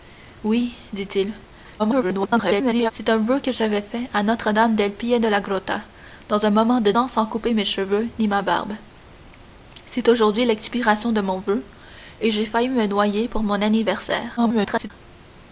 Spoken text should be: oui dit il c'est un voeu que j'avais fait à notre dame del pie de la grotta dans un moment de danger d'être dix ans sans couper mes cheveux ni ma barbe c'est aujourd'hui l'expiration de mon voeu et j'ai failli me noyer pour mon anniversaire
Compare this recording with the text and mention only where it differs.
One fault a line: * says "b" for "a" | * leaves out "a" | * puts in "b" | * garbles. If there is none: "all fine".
* garbles
* leaves out "danger d'être dix"
* garbles